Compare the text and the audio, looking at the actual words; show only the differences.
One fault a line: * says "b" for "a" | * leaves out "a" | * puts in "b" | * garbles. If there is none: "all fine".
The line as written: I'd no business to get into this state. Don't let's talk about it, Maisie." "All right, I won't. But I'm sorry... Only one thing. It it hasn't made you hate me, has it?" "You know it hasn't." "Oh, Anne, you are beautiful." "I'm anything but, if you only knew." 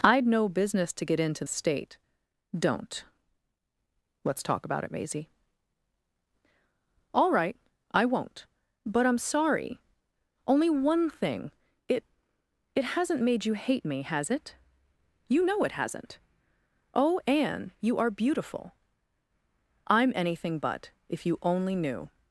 * leaves out "this"